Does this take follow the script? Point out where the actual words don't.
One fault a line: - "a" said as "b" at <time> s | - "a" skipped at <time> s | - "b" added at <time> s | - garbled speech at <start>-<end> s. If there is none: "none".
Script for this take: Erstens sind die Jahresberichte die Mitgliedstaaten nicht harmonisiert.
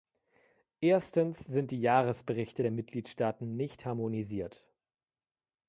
- "die" said as "der" at 2.6 s